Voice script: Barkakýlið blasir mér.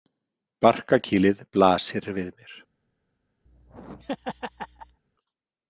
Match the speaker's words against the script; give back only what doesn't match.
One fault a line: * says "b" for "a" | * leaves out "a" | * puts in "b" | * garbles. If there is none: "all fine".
* puts in "við"